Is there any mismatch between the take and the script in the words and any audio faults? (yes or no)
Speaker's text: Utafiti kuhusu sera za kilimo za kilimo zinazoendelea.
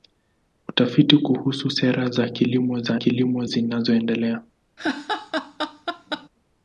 yes